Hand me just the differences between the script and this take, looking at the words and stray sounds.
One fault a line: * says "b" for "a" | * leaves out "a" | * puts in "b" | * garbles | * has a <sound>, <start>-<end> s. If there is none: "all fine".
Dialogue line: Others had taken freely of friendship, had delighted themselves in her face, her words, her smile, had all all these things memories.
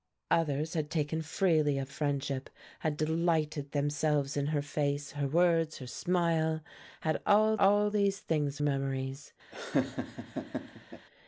* has a laugh, 9.5-11.1 s